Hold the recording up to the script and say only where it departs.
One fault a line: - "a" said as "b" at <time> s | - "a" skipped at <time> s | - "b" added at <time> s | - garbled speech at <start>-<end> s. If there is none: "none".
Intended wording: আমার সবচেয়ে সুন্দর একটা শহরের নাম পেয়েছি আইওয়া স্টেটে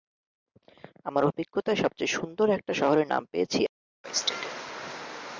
- "অভিজ্ঞতায়" added at 1.2 s